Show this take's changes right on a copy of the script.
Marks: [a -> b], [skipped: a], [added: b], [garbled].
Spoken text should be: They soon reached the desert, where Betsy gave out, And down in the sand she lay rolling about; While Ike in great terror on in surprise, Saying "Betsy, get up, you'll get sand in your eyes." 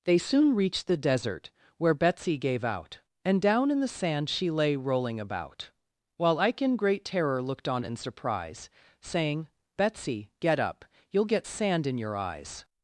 They soon reached the desert, where Betsy gave out, And down in the sand she lay rolling about; While Ike in great terror [added: looked] on in surprise, Saying "Betsy, get up, you'll get sand in your eyes."